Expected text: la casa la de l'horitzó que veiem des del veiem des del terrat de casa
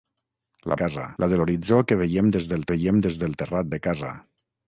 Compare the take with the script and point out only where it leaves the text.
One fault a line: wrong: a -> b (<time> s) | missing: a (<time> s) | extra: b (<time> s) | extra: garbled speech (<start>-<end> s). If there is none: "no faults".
no faults